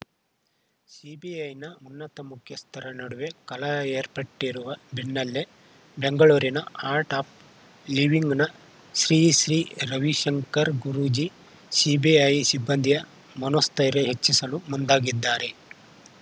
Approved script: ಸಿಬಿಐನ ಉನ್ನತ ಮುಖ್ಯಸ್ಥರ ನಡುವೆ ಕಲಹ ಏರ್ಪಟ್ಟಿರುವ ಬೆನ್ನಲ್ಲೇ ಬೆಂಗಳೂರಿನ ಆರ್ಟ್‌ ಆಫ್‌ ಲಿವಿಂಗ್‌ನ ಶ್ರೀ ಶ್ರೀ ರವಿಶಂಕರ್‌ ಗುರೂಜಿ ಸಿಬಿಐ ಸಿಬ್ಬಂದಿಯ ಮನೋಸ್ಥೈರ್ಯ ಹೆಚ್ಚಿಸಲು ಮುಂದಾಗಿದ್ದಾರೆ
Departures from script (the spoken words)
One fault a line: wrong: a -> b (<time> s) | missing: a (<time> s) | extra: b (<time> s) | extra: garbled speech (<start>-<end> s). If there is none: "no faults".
no faults